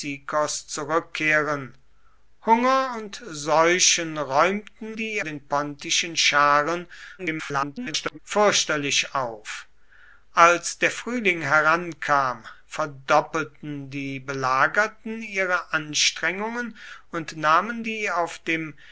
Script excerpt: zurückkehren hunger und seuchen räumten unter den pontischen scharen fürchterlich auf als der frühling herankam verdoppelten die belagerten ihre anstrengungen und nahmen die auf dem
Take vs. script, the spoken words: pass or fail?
fail